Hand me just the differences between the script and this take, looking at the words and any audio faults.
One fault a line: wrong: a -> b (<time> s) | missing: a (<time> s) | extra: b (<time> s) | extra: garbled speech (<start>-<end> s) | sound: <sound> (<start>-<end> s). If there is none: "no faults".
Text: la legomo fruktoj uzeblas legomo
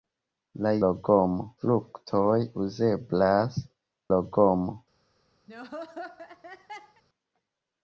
sound: laugh (5.5-7.0 s)